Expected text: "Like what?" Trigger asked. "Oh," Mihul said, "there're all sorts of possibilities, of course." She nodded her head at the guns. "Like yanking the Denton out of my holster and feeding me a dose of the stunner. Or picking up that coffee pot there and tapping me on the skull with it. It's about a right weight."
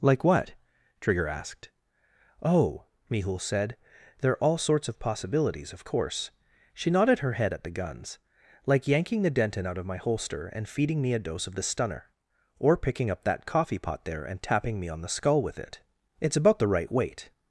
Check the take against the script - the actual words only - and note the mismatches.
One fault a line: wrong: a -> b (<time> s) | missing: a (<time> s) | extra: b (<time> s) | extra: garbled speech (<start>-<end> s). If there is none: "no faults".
wrong: a -> the (16.6 s)